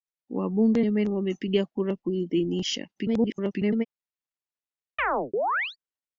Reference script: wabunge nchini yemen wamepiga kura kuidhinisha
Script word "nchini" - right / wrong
wrong